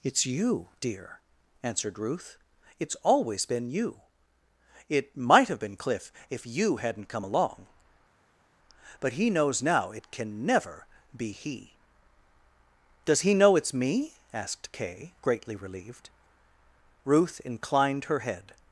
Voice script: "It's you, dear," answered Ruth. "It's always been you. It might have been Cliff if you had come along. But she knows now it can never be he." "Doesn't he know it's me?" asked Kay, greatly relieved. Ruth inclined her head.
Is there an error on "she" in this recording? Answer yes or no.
yes